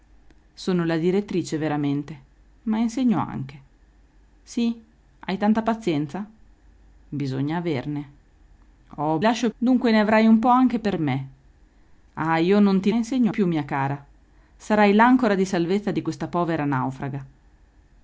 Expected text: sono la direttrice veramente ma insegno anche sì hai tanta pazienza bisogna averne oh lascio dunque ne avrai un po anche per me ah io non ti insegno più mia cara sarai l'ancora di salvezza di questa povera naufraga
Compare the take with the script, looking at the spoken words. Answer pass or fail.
pass